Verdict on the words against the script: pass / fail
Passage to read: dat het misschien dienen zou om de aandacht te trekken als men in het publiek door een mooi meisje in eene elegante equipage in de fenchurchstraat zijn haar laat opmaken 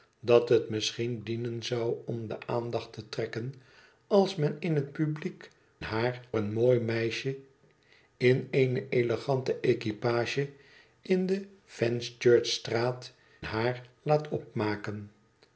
fail